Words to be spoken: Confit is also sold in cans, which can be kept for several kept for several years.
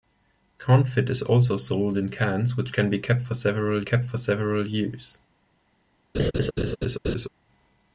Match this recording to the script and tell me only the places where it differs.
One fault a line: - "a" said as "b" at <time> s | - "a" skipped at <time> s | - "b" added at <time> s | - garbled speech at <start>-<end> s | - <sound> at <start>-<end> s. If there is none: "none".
- laugh at 6.1-7.3 s